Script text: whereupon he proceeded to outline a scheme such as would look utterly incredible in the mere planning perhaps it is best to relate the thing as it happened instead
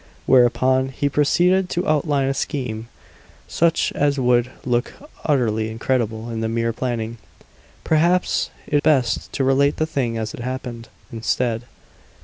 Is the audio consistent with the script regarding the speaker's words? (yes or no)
no